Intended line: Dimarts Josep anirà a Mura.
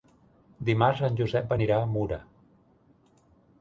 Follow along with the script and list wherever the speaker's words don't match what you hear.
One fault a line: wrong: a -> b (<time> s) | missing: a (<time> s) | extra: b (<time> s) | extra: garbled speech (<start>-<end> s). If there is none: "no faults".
extra: en (1.1 s)